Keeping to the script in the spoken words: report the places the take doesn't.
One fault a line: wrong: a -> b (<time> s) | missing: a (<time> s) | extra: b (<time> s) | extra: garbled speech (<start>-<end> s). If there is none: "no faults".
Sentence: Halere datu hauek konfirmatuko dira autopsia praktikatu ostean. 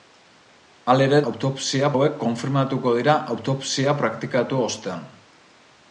wrong: datu -> autopsia (1.3 s)